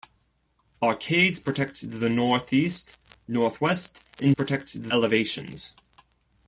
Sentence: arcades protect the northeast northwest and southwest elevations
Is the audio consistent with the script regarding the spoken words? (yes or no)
no